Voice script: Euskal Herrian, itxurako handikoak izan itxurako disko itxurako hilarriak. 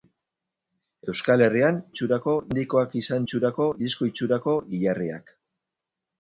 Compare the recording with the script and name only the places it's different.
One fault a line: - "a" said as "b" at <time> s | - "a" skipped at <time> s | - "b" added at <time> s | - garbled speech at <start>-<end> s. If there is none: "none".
none